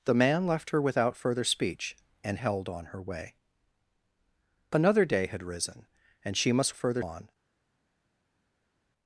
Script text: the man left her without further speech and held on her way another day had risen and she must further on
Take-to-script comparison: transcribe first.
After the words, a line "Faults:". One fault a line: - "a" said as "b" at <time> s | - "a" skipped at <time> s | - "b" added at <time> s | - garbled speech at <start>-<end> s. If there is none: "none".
the man left her without further speech and held on her way another day had risen and she must further on
Faults:
none